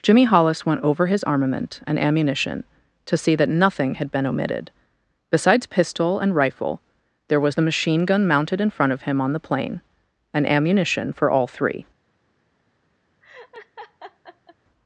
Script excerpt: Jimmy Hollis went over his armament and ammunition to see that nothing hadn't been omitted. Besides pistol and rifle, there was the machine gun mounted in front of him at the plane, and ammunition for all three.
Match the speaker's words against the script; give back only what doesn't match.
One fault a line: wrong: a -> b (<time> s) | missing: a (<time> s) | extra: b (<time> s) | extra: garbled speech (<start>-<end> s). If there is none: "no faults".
wrong: hadn't -> had (4.0 s)
wrong: at -> on (9.2 s)